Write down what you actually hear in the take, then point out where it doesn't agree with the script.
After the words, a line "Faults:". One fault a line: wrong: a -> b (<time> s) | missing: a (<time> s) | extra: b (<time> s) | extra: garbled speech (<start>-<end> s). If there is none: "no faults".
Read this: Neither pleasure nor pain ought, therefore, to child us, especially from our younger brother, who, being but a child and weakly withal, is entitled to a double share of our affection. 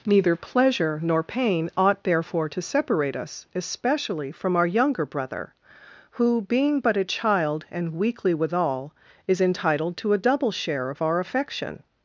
Neither pleasure nor pain ought, therefore, to separate us, especially from our younger brother, who, being but a child and weakly withal, is entitled to a double share of our affection.
Faults:
wrong: child -> separate (2.6 s)